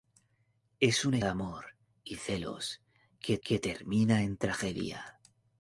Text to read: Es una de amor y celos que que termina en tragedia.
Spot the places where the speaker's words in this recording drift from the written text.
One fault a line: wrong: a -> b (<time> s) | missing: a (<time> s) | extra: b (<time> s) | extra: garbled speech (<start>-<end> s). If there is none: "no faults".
no faults